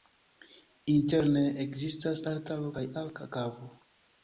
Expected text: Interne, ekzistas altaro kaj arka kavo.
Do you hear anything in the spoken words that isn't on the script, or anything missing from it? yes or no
no